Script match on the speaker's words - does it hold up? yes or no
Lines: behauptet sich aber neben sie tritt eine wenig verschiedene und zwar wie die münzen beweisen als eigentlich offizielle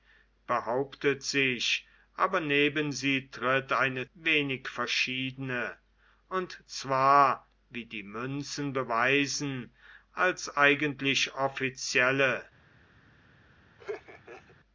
yes